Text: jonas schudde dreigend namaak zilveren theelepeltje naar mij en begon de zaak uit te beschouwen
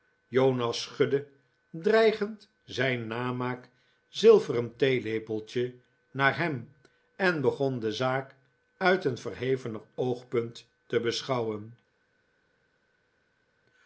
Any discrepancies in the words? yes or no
yes